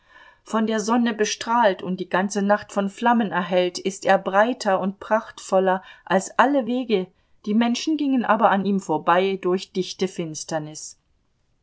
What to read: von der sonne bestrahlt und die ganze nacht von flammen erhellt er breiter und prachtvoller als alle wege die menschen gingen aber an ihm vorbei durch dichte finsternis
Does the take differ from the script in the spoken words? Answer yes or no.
yes